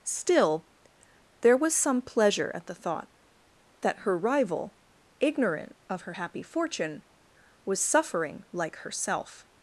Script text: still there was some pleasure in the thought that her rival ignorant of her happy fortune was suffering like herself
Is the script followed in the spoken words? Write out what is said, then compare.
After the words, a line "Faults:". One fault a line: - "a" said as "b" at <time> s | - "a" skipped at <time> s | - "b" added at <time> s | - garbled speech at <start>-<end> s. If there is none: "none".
still there was some pleasure at the thought that her rival ignorant of her happy fortune was suffering like herself
Faults:
- "in" said as "at" at 2.5 s